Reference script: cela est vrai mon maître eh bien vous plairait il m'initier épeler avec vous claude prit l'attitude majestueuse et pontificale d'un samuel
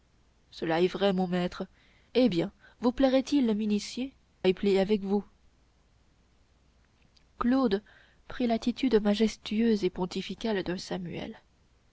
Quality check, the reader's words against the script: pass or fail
pass